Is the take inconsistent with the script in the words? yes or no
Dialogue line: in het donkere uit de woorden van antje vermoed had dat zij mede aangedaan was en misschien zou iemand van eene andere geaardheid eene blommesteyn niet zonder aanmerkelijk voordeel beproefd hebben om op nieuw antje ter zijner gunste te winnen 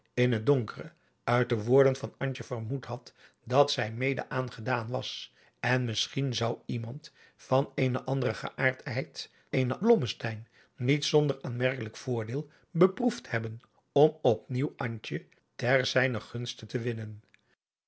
no